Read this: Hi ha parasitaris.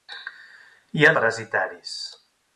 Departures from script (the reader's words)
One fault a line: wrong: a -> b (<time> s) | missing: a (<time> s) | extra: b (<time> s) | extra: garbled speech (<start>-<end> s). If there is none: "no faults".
no faults